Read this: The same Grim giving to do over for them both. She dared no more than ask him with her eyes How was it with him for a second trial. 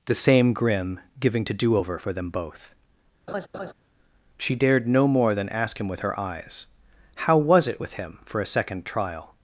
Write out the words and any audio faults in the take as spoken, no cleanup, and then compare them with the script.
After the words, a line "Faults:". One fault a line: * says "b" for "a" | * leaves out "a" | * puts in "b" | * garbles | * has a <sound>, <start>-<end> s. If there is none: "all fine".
The same Grim giving to do over for them both. She dared no more than ask him with her eyes How was it with him for a second trial.
Faults:
* has a laugh, 3.3-3.7 s